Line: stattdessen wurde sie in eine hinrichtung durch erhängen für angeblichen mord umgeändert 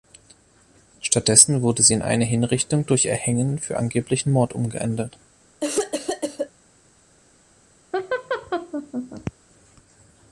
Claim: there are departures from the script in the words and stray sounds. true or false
true